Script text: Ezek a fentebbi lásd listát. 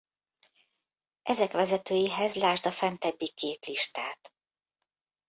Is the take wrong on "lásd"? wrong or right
wrong